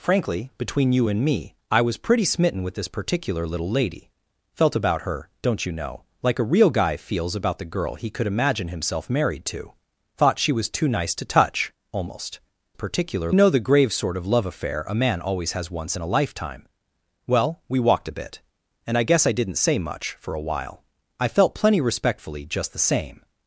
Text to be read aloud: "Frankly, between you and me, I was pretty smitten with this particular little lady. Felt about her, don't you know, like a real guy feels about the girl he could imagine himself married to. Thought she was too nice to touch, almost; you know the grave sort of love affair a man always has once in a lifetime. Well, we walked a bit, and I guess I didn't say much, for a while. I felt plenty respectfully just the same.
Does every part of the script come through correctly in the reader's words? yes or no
no